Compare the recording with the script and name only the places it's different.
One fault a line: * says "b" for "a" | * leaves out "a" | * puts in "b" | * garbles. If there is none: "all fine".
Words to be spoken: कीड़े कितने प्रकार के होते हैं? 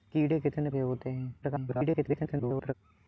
* leaves out "प्रकार"
* garbles